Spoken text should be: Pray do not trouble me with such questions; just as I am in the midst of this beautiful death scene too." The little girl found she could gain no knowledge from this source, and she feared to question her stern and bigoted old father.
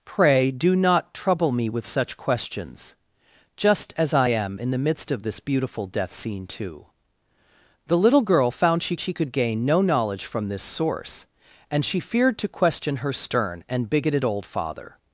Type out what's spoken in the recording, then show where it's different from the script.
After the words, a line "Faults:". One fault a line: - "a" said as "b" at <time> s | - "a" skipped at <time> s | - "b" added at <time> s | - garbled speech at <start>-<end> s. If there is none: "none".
Pray do not trouble me with such questions; just as I am in the midst of this beautiful death scene too." The little girl found she she could gain no knowledge from this source, and she feared to question her stern and bigoted old father.
Faults:
- "she" added at 9.0 s